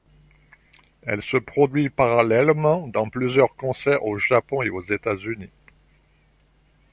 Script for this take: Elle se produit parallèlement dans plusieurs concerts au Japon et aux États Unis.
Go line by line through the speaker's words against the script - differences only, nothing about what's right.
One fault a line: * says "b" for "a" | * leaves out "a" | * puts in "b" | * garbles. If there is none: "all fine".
all fine